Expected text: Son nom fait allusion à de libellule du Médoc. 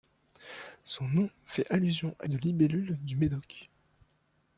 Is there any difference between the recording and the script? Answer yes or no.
no